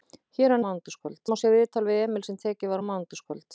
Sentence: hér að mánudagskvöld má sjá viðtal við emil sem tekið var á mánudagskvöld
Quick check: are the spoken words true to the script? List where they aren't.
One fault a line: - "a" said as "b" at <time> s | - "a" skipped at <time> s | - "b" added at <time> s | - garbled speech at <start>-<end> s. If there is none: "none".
none